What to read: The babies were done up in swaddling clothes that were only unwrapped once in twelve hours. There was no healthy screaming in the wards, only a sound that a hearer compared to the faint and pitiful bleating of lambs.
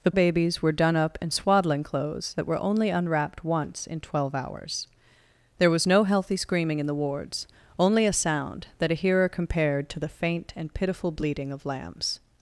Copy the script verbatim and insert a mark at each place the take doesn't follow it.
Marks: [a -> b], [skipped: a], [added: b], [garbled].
The babies were done up in swaddling clothes that were only unwrapped once in twelve hours. There was no healthy screaming in the wards, only a sound that a hearer compared to the faint and pitiful bleating of lambs.